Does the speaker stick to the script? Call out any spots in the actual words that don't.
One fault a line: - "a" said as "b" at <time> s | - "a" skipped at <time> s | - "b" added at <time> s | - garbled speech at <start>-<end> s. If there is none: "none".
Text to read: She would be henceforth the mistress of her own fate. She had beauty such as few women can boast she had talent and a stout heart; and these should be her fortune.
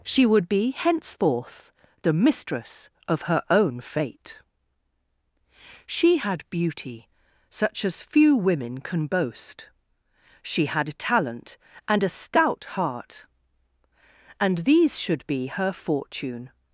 none